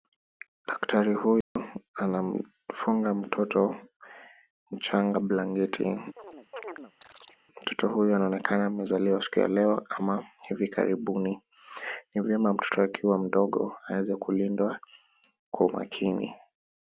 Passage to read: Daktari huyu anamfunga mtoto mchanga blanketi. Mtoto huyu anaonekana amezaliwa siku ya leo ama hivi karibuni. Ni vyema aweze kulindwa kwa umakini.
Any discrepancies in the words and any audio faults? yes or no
yes